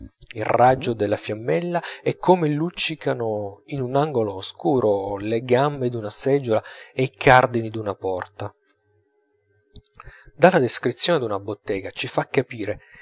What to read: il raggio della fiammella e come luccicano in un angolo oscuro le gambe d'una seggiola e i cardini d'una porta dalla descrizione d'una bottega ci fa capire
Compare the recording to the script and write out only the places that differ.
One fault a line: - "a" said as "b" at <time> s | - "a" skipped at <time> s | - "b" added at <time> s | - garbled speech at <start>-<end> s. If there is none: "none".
none